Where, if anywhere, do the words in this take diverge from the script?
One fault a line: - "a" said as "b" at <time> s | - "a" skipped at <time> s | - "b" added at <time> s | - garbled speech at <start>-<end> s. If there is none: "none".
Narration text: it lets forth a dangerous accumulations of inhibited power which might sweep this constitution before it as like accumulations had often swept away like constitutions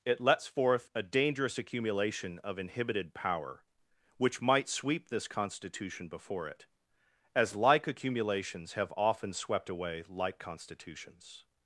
- "accumulations" said as "accumulation" at 1.6 s
- "had" said as "have" at 8.7 s